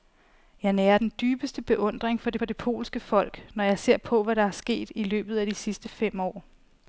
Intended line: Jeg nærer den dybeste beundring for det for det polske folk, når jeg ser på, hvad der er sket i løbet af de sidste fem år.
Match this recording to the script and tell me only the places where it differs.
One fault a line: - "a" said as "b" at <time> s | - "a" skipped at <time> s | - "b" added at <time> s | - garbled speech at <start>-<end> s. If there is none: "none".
none